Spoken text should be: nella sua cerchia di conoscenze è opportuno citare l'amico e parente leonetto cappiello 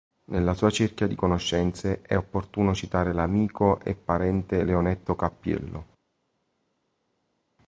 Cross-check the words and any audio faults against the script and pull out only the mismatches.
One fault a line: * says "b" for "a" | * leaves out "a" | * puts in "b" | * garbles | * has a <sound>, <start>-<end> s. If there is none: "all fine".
all fine